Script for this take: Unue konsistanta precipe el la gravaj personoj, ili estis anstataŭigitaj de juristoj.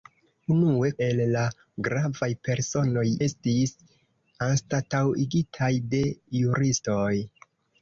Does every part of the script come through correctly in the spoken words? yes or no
no